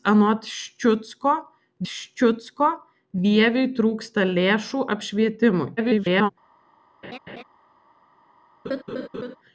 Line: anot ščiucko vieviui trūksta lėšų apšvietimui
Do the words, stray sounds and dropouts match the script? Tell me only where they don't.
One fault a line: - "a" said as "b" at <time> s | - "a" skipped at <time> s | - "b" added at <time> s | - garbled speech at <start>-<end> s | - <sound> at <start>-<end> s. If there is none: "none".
- "ščiucko" added at 1.9 s
- garbled speech at 5.8-6.3 s
- laugh at 7.0-7.4 s
- laugh at 8.6-9.4 s